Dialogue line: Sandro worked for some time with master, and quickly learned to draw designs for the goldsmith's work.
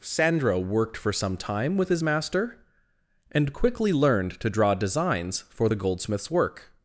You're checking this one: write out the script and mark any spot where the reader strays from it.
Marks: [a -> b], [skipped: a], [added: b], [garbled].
Sandro worked for some time with [added: his] master, and quickly learned to draw designs for the goldsmith's work.